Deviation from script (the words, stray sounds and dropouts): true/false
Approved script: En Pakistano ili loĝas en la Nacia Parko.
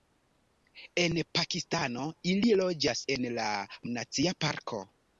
false